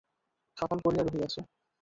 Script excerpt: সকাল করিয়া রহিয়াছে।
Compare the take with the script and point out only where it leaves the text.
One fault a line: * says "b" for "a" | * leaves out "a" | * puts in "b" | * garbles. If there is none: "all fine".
all fine